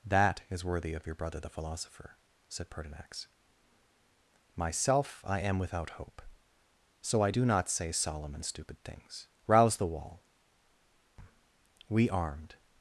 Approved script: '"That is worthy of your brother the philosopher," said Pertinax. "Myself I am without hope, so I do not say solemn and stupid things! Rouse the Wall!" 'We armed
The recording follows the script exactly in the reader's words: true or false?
true